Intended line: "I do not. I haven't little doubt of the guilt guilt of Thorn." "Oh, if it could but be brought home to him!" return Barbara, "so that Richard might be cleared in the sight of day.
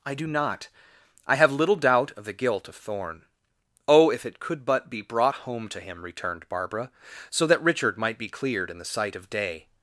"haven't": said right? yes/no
no